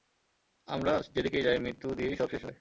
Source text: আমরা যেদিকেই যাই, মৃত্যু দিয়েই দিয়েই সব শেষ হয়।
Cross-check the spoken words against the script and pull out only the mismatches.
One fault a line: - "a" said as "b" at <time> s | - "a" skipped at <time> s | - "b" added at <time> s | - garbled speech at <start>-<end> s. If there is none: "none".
- "দিয়েই" skipped at 2.1 s